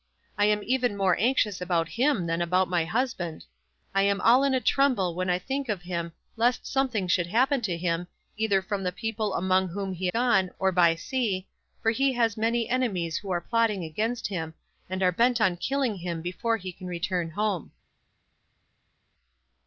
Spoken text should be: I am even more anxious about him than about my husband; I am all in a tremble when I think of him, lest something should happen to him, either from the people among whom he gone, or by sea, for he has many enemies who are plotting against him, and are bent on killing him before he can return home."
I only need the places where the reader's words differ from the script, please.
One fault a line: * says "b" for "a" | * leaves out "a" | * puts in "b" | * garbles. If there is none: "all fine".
all fine